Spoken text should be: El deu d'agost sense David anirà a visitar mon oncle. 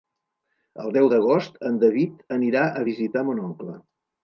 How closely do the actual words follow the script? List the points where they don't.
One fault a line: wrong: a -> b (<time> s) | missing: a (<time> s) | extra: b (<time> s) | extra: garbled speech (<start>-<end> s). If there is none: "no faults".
wrong: sense -> en (1.7 s)